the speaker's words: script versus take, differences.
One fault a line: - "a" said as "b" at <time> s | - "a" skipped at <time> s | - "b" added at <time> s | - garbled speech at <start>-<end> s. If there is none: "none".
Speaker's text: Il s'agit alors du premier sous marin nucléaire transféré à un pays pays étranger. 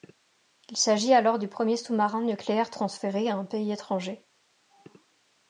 - "pays" skipped at 3.7 s